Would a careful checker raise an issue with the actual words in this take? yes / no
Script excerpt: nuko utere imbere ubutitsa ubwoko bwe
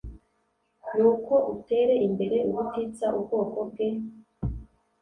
no